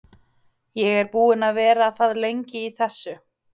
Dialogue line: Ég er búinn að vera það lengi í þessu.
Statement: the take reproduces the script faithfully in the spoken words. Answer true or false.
true